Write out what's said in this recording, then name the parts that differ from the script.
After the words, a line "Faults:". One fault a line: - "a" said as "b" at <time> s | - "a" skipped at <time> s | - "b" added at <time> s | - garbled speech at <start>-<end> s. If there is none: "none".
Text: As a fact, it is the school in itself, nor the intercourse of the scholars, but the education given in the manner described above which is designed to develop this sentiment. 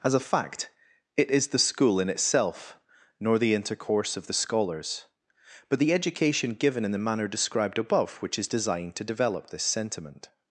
As a fact, it is the school in itself, nor the intercourse of the scholars, but the education given in the manner described above which is designed to develop this sentiment.
Faults:
none